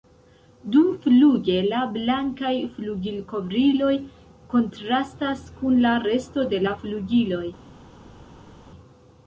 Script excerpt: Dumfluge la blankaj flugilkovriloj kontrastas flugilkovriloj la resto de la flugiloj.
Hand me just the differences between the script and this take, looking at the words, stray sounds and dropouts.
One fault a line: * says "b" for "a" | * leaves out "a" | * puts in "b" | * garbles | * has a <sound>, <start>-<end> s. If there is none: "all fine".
* says "kun" for "flugilkovriloj"